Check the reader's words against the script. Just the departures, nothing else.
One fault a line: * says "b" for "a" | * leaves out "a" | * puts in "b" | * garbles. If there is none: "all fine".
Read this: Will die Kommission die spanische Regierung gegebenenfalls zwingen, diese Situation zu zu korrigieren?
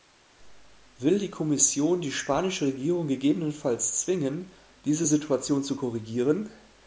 * leaves out "zu"